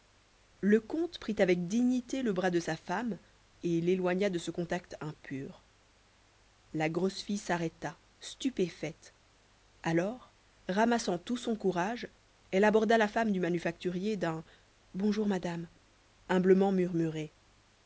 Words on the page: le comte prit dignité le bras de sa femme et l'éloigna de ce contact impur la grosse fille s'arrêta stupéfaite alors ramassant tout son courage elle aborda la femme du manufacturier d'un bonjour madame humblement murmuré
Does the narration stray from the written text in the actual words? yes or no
yes